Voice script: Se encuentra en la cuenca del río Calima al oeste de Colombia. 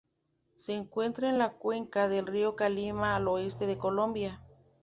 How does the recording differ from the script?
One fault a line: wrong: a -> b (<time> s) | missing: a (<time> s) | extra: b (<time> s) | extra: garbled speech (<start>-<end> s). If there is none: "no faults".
no faults